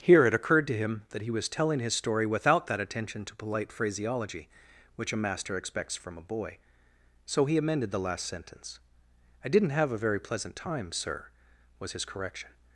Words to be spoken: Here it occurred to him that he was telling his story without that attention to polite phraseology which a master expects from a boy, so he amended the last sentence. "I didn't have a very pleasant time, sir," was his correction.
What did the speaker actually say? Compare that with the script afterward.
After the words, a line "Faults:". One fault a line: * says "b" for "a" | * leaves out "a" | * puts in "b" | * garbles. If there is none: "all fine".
Here it occurred to him that he was telling his story without that attention to polite phraseology which a master expects from a boy, so he amended the last sentence. "I didn't have a very pleasant time, sir," was his correction.
Faults:
all fine